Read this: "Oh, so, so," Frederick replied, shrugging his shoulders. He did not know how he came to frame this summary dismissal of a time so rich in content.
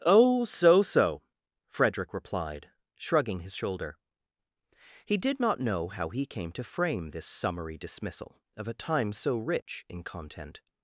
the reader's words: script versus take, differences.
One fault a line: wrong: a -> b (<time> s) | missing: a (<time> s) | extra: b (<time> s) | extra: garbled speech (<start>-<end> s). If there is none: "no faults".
wrong: shoulders -> shoulder (3.5 s)